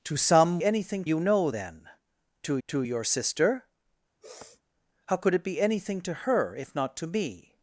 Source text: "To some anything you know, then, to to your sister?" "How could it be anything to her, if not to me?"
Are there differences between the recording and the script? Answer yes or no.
no